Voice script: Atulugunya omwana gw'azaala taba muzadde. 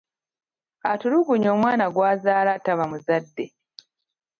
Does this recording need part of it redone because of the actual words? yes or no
no